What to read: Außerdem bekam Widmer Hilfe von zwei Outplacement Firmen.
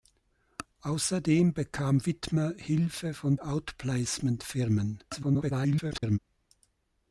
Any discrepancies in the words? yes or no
yes